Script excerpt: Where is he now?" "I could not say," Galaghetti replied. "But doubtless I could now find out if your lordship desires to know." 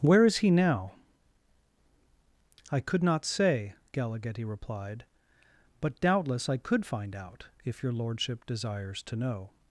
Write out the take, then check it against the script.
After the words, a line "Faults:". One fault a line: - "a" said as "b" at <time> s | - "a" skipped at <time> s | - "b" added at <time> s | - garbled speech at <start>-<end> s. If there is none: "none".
Where is he now?" "I could not say," Galaghetti replied. "But doubtless I could find out if your lordship desires to know."
Faults:
- "now" skipped at 6.9 s